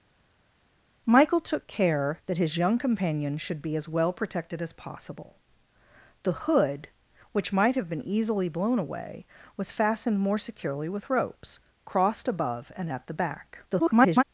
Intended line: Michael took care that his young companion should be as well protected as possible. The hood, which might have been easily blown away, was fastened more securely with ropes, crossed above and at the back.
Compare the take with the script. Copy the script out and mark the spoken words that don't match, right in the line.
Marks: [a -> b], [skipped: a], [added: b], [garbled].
Michael took care that his young companion should be as well protected as possible. The hood, which might have been easily blown away, was fastened more securely with ropes, crossed above and at the back. [garbled]